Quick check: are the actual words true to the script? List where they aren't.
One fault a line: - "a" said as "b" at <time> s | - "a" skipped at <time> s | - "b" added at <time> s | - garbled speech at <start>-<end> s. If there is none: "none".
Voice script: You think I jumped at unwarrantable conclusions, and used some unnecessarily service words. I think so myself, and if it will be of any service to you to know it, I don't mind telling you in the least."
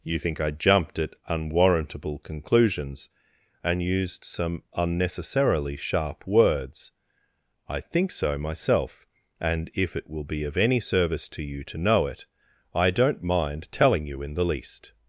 - "service" said as "sharp" at 5.8 s